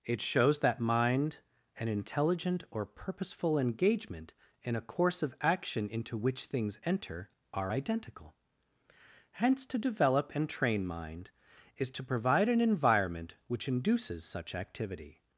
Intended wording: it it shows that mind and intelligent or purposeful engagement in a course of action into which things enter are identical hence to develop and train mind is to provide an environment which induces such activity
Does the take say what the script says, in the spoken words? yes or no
no